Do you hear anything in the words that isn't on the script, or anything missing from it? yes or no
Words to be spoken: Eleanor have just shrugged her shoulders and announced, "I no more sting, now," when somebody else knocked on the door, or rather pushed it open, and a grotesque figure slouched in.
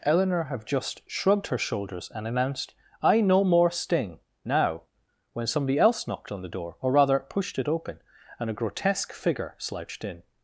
no